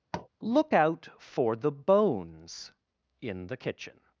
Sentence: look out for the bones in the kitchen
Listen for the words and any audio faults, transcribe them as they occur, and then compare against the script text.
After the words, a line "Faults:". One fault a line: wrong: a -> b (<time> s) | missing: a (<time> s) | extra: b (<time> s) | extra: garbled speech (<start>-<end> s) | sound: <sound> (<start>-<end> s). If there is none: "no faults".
look out for the bones in the kitchen
Faults:
sound: tap (0.1-0.3 s)